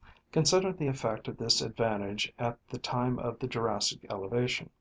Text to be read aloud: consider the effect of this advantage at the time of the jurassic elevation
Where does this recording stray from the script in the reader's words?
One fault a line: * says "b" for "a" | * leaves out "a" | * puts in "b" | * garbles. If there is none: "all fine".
all fine